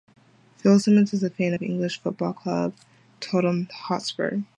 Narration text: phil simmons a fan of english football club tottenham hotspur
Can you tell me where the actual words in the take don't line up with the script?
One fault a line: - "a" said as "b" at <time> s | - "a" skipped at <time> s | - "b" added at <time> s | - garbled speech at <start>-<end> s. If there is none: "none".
- "is" added at 1.1 s